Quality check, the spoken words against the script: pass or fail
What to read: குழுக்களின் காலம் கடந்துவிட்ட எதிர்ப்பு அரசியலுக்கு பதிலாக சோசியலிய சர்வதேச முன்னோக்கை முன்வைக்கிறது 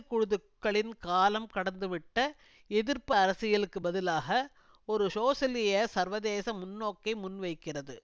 fail